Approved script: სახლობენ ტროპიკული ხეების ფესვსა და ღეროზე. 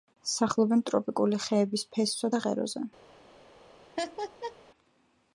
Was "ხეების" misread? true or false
false